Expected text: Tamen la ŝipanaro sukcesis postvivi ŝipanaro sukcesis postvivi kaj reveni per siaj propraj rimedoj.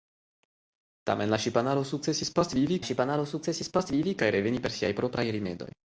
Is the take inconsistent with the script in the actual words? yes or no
no